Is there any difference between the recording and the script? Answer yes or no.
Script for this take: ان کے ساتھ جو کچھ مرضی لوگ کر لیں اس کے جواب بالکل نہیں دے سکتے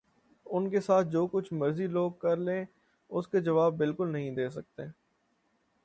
no